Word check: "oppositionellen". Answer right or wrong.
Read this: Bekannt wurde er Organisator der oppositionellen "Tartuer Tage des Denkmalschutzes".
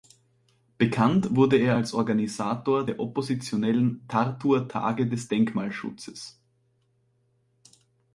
right